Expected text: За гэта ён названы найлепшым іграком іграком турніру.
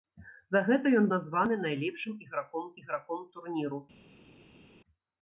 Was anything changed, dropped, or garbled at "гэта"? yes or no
no